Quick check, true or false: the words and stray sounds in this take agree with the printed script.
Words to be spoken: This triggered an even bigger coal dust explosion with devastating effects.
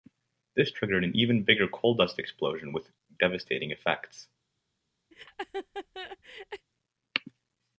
false